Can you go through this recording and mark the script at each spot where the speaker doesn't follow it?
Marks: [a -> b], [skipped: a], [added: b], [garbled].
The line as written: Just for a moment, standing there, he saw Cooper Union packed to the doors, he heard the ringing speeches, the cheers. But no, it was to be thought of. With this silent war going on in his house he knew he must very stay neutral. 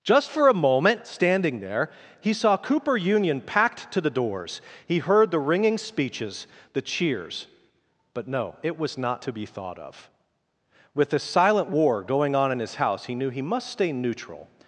Just for a moment, standing there, he saw Cooper Union packed to the doors, he heard the ringing speeches, the cheers. But no, it was [added: not] to be thought of. With this silent war going on in his house he knew he must [skipped: very] stay neutral.